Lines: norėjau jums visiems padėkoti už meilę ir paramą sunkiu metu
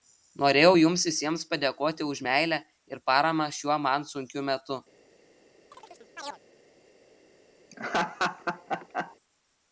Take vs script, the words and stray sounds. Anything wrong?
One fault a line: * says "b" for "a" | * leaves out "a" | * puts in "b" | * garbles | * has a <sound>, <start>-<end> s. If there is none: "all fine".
* puts in "šiuo man"
* has a chirp, 5.7-6.4 s
* has a laugh, 7.7-9.2 s